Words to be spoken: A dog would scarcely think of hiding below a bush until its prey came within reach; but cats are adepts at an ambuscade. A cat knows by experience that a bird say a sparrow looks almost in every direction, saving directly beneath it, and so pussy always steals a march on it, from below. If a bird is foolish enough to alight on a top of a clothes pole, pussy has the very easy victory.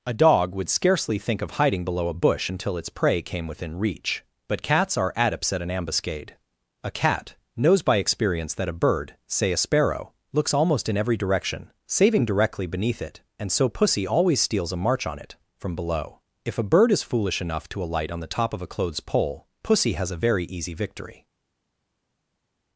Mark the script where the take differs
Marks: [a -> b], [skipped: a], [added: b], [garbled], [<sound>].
A dog would scarcely think of hiding below a bush until its prey came within reach; but cats are adepts at an ambuscade. A cat knows by experience that a bird say a sparrow looks almost in every direction, saving directly beneath it, and so pussy always steals a march on it, from below. If a bird is foolish enough to alight on [a -> the] top of a clothes pole, pussy has [the -> a] very easy victory.